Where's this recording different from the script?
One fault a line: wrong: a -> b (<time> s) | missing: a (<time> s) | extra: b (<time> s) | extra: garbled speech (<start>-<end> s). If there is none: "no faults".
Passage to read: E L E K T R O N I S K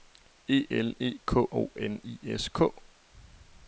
missing: T R (1.4 s)